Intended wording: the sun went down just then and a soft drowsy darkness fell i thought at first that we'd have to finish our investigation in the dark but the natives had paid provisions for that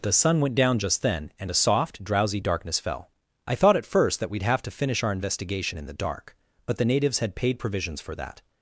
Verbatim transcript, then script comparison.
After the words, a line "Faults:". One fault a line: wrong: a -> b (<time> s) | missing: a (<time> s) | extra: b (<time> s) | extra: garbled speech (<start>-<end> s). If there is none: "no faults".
the sun went down just then and a soft drowsy darkness fell i thought at first that we'd have to finish our investigation in the dark but the natives had paid provisions for that
Faults:
no faults